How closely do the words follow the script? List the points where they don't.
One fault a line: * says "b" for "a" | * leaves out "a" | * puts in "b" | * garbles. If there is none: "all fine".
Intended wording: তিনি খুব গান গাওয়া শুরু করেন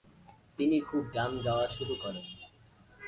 all fine